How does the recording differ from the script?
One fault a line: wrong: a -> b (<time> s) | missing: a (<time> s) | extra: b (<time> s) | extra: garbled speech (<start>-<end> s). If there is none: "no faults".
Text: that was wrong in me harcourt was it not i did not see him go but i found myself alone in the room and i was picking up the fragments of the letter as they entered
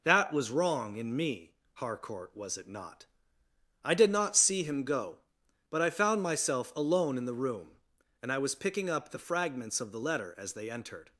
no faults